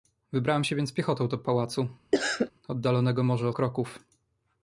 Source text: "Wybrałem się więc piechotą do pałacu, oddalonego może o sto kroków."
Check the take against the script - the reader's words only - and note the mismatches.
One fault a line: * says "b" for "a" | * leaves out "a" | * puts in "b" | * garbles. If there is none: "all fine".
* leaves out "sto"